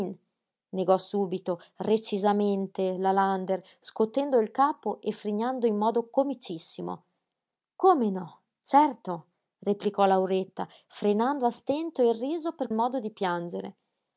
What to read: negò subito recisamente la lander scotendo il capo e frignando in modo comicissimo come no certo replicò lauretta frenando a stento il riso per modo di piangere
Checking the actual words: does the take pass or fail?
pass